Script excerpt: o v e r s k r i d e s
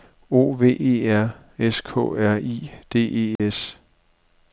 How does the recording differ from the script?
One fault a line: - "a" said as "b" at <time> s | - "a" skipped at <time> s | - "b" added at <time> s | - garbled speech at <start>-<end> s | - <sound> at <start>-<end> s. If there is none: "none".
- dropout at 3.4-3.4 s